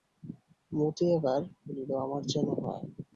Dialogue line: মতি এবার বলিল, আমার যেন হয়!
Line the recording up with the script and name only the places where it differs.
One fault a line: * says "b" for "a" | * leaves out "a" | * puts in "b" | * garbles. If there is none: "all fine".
all fine